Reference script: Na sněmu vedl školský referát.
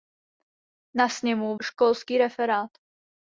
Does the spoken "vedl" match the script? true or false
false